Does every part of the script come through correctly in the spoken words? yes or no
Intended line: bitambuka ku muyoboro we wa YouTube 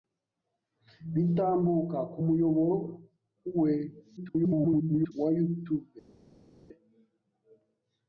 no